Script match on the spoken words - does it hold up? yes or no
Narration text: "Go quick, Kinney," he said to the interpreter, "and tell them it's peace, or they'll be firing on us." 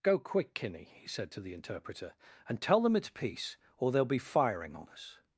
yes